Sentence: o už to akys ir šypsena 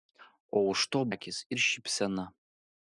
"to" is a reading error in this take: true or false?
false